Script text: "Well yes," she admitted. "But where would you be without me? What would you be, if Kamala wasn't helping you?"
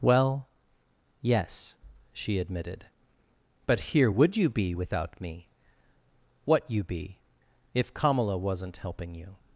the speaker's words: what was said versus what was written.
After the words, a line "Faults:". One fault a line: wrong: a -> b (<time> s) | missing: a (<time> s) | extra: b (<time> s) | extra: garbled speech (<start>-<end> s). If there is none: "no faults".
"Well yes," she admitted. "But here would you be without me? What you be, if Kamala wasn't helping you?"
Faults:
wrong: where -> here (3.8 s)
missing: would (6.7 s)